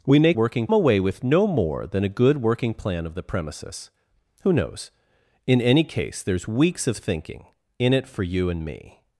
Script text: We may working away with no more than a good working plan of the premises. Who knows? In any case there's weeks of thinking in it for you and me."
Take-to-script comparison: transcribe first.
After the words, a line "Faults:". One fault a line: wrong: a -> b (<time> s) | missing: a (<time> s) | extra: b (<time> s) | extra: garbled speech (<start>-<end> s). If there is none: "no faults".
We may working away with no more than a good working plan of the premises. Who knows? In any case there's weeks of thinking in it for you and me."
Faults:
no faults